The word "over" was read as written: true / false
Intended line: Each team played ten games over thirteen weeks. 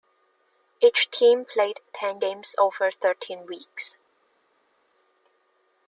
true